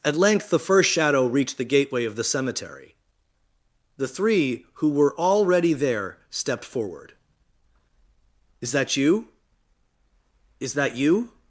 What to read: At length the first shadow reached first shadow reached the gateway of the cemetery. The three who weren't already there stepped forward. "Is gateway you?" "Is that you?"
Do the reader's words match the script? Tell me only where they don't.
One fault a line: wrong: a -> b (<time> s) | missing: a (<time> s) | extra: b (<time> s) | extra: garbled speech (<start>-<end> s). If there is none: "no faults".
missing: first shadow reached (1.6 s)
wrong: weren't -> were (4.9 s)
wrong: gateway -> that (8.7 s)